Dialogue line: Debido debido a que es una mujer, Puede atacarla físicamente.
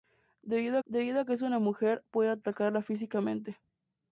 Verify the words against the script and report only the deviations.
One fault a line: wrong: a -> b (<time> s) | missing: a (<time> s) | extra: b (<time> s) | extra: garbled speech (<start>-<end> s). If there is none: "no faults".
no faults